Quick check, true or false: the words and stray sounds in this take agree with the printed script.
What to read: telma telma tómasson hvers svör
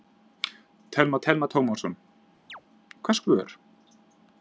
false